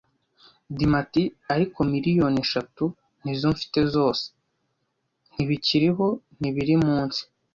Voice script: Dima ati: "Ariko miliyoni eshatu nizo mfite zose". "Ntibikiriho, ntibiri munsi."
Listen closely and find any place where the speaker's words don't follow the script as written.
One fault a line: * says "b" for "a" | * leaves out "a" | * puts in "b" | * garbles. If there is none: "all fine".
all fine